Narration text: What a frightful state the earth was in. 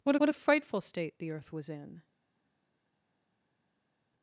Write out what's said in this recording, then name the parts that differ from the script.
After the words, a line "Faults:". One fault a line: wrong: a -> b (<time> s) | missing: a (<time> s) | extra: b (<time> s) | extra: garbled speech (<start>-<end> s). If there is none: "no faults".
What what a frightful state the earth was in.
Faults:
extra: what (0.2 s)